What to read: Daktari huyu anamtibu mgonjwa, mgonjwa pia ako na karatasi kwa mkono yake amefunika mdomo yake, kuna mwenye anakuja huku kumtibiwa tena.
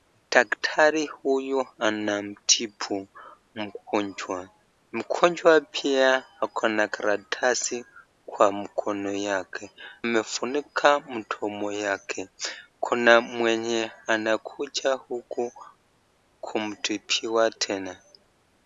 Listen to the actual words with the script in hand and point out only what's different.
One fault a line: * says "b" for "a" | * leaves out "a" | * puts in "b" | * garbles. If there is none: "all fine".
all fine